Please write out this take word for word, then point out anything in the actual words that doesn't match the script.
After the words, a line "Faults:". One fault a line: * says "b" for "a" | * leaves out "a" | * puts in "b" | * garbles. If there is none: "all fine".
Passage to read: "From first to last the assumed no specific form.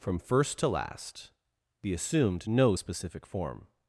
"From first to last the assumed no specific form.
Faults:
all fine